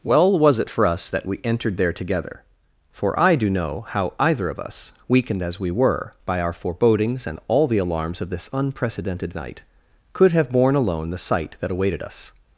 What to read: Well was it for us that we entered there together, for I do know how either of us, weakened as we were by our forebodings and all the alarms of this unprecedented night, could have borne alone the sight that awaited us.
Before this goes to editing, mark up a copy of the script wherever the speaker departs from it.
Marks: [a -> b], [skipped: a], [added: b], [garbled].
Well was it for us that we entered there together, for I do know how either of us, weakened as we were by our forebodings and all the alarms of this unprecedented night, could have borne alone the sight that awaited us.